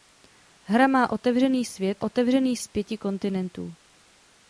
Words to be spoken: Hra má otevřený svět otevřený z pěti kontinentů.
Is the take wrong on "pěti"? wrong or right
right